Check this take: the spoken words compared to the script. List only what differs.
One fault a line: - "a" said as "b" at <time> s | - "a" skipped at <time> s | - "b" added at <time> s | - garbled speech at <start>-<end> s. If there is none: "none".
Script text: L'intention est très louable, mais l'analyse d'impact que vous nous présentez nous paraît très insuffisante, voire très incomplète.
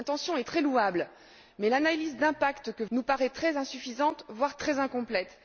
- "vous nous présentez" skipped at 2.9 s